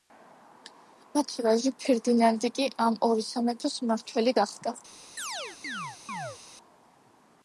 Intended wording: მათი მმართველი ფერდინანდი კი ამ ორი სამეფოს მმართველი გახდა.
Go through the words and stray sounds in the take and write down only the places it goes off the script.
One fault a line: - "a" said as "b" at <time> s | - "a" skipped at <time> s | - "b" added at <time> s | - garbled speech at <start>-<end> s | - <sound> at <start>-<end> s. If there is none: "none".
- "მმართველი" said as "ვაჟი" at 1.5 s
- chirp at 5.2-6.4 s